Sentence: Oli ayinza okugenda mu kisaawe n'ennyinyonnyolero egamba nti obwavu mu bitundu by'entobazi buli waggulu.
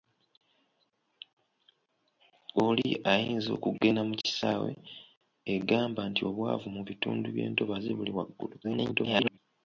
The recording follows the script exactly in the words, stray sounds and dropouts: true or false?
false